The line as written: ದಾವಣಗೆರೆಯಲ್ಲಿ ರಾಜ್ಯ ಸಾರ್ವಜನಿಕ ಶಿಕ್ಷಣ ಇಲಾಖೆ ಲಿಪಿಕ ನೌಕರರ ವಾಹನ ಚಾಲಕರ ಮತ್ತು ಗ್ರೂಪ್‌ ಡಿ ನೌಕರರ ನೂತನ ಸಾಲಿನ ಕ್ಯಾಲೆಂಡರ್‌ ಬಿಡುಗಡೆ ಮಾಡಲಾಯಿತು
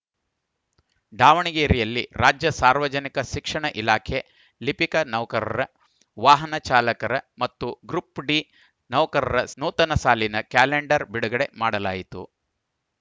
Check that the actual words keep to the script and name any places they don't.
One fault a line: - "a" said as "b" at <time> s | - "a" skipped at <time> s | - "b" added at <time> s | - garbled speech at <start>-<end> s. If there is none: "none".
none